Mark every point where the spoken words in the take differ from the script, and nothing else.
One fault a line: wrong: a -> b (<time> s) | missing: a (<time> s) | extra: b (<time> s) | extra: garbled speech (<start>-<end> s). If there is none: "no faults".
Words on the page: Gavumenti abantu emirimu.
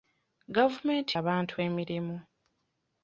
no faults